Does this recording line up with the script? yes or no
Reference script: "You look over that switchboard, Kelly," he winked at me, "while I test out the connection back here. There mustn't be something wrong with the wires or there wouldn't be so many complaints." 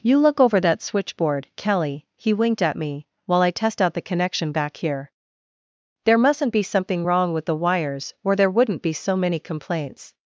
yes